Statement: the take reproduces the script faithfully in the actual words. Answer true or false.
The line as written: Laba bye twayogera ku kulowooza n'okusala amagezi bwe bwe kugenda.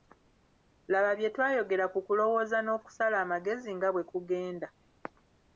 false